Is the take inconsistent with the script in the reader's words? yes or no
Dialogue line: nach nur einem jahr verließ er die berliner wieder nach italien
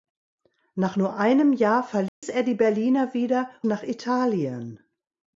no